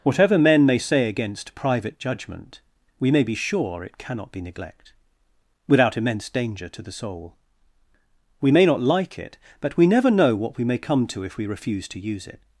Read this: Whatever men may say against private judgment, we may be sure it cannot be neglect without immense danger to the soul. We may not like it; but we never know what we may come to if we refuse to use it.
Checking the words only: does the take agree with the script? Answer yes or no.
yes